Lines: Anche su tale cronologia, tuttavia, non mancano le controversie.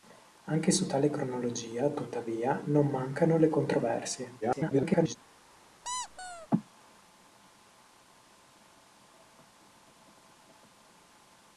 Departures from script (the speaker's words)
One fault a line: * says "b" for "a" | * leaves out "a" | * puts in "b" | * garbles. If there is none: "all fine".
* garbles